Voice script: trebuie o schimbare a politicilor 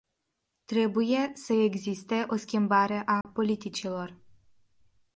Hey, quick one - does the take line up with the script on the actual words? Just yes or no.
no